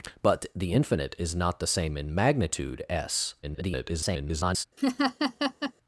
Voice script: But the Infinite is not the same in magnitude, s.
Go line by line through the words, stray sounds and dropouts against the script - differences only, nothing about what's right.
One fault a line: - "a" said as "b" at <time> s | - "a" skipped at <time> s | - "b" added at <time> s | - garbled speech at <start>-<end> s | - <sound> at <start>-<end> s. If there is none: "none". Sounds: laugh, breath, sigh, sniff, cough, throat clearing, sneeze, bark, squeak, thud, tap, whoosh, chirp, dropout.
- garbled speech at 3.4-4.6 s
- laugh at 4.8-5.7 s